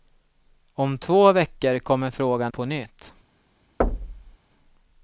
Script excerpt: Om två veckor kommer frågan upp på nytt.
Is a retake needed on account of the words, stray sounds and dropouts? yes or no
yes